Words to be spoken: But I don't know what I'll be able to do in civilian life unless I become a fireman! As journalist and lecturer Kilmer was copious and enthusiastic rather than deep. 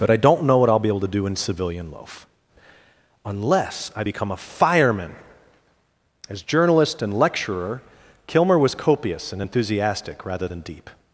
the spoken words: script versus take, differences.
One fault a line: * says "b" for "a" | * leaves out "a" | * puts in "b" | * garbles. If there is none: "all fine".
* says "loaf" for "life"